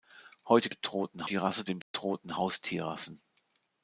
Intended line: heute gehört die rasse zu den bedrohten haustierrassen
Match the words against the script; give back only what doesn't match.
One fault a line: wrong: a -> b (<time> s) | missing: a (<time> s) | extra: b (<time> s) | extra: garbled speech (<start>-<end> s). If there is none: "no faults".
wrong: gehört -> bedrohten (0.7 s)
missing: zu (1.6 s)